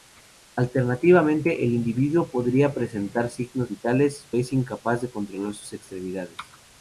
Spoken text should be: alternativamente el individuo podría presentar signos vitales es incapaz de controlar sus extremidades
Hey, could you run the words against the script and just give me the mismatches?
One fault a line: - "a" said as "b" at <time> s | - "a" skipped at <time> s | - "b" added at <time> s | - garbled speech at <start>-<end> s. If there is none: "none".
none